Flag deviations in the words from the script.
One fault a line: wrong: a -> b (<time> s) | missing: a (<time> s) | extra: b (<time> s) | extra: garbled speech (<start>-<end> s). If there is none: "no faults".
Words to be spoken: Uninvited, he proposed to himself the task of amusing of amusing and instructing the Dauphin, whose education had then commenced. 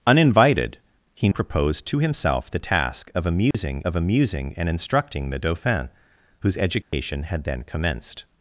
no faults